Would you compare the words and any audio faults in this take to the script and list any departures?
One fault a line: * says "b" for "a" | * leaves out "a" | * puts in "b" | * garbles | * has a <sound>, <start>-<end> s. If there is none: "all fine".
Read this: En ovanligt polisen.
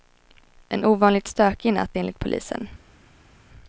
* puts in "stökig natt enligt"